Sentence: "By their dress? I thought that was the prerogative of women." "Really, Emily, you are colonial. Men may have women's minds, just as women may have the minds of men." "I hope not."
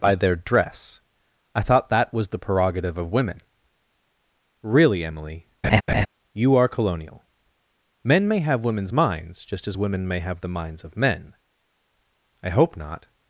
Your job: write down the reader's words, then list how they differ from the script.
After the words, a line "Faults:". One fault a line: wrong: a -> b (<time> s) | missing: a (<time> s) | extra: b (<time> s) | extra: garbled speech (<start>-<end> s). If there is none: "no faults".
"By their dress? I thought that was the prerogative of women." "Really, Emily, you are colonial. Men may have women's minds, just as women may have the minds of men." "I hope not."
Faults:
no faults